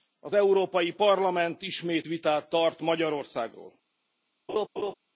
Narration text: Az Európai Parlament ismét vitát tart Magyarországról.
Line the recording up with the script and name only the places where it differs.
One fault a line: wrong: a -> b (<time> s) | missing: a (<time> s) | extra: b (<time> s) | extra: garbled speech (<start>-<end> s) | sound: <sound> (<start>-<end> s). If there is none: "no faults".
sound: laugh (4.5-4.9 s)